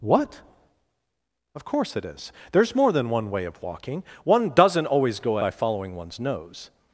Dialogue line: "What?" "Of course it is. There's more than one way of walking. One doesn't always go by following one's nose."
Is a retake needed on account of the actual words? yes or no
no